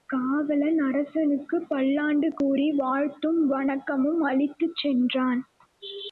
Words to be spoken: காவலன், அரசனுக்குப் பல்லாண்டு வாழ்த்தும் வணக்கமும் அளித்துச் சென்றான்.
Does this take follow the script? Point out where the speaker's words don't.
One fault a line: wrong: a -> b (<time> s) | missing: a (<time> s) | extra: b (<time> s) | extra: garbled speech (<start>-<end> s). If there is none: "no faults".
extra: கூறி (2.4 s)